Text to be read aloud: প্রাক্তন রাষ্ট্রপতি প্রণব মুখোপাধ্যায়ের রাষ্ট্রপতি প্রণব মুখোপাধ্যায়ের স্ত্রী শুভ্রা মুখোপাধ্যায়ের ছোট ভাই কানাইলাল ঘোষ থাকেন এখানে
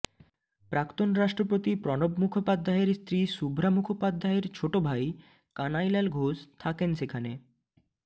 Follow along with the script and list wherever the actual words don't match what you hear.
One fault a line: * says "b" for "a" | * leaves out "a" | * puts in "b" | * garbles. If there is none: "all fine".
* leaves out "রাষ্ট্রপতি প্রণব মুখোপাধ্যায়ের"
* says "সেখানে" for "এখানে"